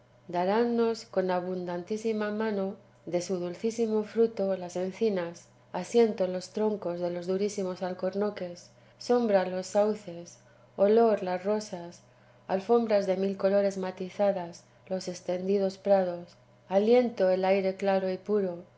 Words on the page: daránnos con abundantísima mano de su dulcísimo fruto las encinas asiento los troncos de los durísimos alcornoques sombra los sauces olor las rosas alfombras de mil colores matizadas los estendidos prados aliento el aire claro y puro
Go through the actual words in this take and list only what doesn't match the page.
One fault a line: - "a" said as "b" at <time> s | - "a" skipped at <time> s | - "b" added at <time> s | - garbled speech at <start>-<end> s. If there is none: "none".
none